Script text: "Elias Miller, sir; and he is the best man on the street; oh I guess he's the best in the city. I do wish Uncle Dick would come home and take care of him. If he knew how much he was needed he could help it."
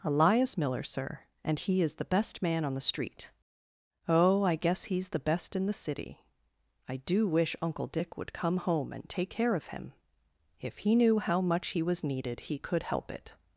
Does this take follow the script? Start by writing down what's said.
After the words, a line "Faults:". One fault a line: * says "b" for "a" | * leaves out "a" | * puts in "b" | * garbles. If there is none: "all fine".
"Elias Miller, sir; and he is the best man on the street; oh I guess he's the best in the city. I do wish Uncle Dick would come home and take care of him. If he knew how much he was needed he could help it."
Faults:
all fine